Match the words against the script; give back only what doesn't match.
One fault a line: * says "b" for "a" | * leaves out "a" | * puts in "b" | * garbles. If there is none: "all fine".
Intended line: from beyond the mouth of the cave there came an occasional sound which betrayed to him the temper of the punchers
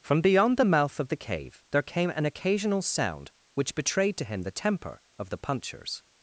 all fine